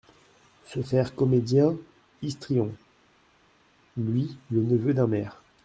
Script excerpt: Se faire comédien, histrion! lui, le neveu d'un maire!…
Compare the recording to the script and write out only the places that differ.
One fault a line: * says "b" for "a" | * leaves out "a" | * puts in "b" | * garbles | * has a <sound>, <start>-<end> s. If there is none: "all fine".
all fine